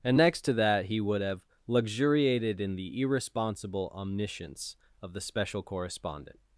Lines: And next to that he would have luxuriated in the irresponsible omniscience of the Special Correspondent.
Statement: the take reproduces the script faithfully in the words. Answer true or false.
true